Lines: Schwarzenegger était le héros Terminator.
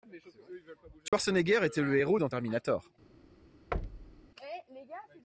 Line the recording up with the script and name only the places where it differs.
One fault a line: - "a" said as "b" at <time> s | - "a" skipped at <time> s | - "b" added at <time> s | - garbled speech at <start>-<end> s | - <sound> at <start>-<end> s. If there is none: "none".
- dropout at 1.1-1.1 s
- "dans" added at 2.2 s
- thud at 3.7-4.3 s